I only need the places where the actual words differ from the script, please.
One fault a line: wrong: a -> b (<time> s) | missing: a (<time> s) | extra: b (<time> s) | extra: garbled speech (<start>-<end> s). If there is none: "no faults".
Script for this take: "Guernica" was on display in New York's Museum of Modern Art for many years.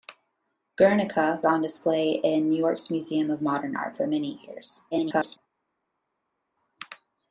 missing: was (1.4 s)
extra: garbled speech (4.9-5.4 s)